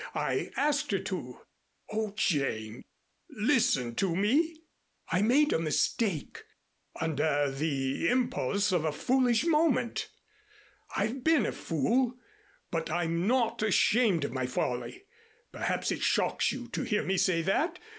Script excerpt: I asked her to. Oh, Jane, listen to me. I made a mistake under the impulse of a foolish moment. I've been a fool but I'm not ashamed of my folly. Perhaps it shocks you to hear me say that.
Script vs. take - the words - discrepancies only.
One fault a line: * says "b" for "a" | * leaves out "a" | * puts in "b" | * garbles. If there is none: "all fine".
all fine